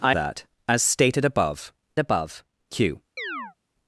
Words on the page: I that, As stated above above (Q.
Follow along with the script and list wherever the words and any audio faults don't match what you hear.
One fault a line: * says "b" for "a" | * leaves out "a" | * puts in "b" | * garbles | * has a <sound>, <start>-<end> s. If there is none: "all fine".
* has a chirp, 3.2-3.5 s